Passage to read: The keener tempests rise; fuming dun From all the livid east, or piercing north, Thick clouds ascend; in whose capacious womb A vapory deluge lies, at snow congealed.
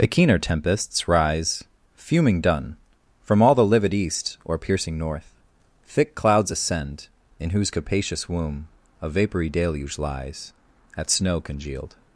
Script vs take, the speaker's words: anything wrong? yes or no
no